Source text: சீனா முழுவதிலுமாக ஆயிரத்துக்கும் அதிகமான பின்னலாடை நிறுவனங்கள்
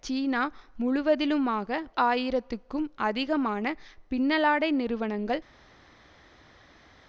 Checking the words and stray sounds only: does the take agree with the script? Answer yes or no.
yes